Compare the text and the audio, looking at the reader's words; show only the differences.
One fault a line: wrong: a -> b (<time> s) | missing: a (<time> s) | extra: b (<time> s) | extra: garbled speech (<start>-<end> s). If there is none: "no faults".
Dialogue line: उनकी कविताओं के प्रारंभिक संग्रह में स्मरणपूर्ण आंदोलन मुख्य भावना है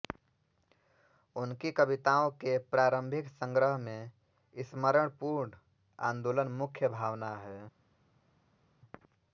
no faults